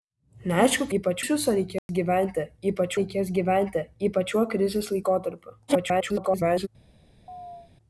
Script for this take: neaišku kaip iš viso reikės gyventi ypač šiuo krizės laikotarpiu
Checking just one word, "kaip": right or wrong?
wrong